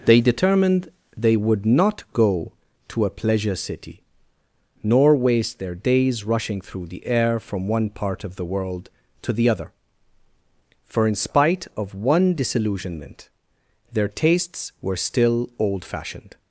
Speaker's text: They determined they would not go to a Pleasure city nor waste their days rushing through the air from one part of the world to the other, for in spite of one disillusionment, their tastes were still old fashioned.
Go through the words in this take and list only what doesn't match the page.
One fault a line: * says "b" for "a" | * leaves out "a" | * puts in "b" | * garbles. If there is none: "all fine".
all fine